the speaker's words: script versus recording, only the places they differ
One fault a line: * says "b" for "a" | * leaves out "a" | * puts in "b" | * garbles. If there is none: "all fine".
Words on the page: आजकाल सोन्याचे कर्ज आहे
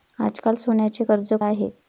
all fine